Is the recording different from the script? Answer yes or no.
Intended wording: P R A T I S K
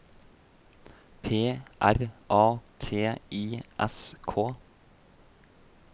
no